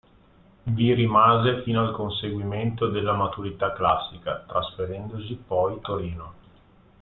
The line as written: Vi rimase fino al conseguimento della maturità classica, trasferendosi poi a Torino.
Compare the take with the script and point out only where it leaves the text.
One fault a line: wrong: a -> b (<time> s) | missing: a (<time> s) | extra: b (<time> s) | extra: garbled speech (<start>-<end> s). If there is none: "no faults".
missing: a (5.8 s)